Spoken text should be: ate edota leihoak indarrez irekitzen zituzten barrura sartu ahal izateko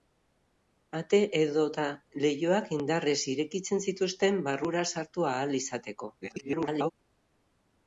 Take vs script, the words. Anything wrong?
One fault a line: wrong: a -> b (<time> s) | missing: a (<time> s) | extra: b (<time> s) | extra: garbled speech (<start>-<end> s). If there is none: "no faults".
extra: garbled speech (6.2-6.9 s)